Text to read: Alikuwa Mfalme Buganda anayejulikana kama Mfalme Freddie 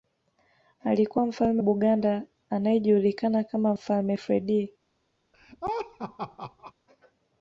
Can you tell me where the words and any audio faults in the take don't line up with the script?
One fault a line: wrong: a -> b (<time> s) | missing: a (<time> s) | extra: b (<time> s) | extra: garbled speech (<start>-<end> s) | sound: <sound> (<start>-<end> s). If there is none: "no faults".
sound: laugh (5.3-6.7 s)